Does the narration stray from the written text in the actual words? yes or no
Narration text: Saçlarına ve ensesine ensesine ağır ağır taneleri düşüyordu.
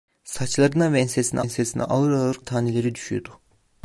no